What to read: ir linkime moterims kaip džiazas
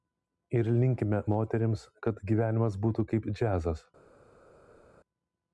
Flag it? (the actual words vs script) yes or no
yes